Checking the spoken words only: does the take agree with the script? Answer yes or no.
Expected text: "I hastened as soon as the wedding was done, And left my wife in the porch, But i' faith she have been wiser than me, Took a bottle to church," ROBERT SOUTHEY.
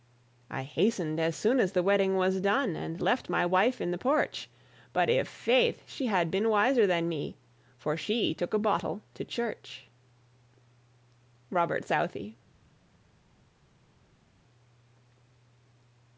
no